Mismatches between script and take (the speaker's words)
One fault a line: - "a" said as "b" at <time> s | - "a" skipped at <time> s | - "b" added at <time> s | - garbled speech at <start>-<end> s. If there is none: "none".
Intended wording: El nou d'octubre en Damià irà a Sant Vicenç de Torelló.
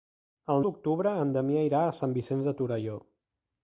- "nou" skipped at 0.6 s